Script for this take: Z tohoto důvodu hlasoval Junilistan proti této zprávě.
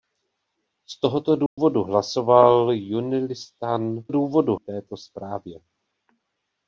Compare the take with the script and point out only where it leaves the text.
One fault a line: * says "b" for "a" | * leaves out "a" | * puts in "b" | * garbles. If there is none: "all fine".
* says "důvodu" for "proti"